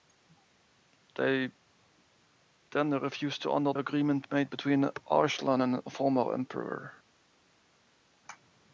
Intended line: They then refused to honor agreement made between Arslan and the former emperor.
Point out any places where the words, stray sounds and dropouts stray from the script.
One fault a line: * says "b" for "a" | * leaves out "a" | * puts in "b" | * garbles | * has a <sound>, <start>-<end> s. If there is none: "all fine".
all fine